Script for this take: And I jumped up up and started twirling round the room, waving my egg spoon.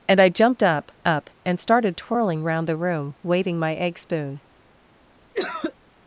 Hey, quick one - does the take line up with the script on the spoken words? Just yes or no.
yes